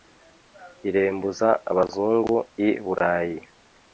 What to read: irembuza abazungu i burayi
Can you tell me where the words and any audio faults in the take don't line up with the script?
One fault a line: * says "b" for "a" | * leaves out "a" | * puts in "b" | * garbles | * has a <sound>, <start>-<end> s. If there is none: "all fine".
all fine